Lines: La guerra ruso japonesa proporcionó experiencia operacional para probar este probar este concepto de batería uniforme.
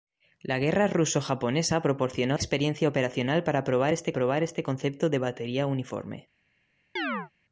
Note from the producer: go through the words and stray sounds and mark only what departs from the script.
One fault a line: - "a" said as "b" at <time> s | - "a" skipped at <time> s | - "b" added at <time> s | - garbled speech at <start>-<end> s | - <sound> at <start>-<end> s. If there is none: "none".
- chirp at 7.0-7.3 s